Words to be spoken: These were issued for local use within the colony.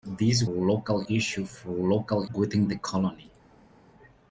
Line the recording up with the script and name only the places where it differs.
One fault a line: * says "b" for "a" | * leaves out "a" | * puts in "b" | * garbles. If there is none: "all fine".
* says "local" for "were"
* leaves out "use"